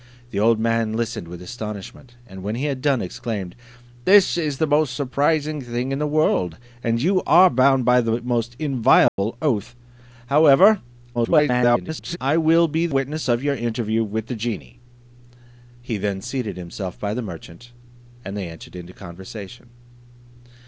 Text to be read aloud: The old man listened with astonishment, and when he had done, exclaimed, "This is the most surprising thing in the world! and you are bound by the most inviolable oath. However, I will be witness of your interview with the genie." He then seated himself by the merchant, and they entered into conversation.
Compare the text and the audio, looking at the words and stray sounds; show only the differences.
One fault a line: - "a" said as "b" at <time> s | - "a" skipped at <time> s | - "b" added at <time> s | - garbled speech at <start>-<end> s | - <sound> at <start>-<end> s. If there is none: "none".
- dropout at 9.1-9.2 s
- garbled speech at 11.1-12.2 s